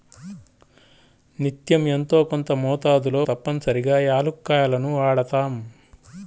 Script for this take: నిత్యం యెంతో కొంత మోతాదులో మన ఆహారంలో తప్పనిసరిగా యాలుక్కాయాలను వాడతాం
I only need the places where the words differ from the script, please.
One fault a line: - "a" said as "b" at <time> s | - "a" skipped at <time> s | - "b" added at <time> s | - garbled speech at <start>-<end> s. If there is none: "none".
- "మన ఆహారంలో" skipped at 3.2 s